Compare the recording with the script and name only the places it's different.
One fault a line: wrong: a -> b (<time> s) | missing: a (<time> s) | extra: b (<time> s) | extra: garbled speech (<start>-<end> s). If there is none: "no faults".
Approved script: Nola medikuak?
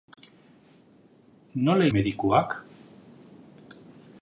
no faults